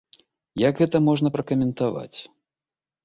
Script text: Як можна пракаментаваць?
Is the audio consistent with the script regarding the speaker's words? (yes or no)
no